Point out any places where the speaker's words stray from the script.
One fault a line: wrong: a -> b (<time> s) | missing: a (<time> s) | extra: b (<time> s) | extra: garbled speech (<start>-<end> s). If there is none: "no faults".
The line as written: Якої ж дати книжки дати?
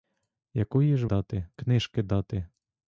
no faults